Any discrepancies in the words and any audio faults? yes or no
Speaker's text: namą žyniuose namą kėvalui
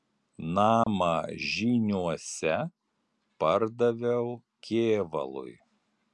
yes